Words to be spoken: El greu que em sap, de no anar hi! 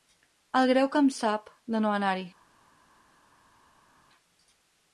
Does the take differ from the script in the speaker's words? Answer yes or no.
no